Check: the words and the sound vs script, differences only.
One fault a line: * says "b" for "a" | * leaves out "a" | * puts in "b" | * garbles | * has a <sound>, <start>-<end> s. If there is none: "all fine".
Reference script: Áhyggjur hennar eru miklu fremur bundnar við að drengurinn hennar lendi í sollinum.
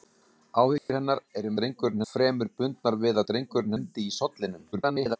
* has a dropout, 0.8-0.9 s
* says "drengurinn" for "miklu"
* leaves out "hennar"
* garbles